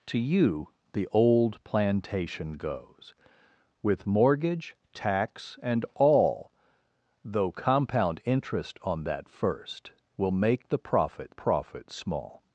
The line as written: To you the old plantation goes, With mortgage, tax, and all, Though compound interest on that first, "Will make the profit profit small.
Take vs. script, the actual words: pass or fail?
pass